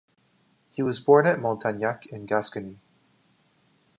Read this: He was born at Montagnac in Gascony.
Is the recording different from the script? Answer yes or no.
no